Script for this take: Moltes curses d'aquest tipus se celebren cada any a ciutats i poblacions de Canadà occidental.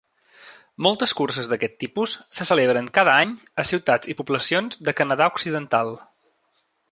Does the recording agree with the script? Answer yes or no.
yes